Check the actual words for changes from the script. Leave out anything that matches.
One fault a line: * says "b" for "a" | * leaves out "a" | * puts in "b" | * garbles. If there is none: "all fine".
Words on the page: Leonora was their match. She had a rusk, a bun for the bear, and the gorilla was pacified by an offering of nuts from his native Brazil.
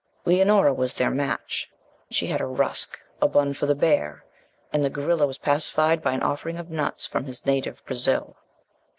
all fine